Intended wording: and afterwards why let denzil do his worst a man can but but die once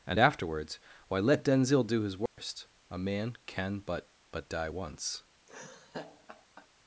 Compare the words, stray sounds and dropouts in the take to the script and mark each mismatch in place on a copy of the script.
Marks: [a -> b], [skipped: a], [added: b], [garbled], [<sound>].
and afterwards why let denzil do his worst [dropout] a man can but but die once [laugh]